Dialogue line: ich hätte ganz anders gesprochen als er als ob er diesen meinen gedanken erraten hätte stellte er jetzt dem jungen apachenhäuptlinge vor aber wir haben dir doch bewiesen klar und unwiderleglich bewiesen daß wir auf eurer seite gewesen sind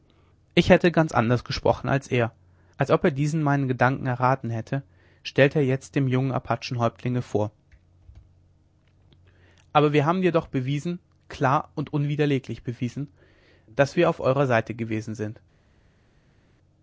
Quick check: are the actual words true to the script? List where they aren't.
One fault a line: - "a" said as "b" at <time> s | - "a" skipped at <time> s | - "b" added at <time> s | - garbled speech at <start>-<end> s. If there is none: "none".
none